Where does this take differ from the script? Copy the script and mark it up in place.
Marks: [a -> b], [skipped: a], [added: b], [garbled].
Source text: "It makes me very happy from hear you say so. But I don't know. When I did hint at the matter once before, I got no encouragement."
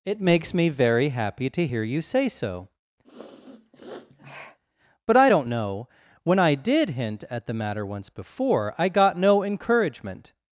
"It makes me very happy [from -> to] hear you say so. But I don't know. When I did hint at the matter once before, I got no encouragement."